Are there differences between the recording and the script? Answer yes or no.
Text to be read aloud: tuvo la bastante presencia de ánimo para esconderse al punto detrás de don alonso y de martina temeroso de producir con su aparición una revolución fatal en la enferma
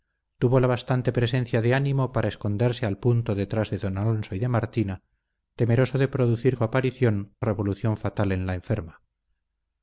yes